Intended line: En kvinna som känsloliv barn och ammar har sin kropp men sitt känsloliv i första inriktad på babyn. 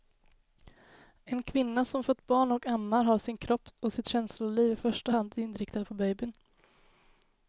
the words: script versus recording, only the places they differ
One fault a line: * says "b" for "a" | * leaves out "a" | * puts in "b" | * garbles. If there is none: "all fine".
* says "fött" for "känsloliv"
* says "och" for "men"
* puts in "hand"